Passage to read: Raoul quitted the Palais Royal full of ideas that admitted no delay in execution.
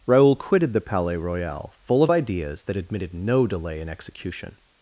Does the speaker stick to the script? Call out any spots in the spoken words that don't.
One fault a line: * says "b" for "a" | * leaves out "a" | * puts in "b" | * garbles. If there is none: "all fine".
all fine